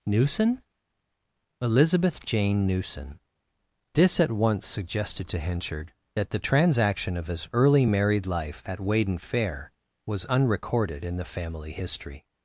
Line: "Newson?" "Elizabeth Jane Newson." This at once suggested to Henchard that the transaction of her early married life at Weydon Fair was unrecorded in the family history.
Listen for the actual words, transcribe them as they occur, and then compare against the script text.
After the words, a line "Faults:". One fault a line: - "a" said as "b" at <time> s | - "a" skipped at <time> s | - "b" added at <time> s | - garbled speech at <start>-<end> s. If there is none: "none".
"Newson?" "Elizabeth Jane Newson." This at once suggested to Henchard that the transaction of his early married life at Weydon Fair was unrecorded in the family history.
Faults:
- "her" said as "his" at 7.3 s